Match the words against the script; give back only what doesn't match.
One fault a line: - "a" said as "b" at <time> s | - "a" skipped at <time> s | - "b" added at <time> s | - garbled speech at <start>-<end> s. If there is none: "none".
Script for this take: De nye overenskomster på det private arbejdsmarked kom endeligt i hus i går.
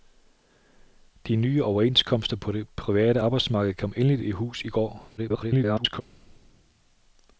- garbled speech at 5.2-6.0 s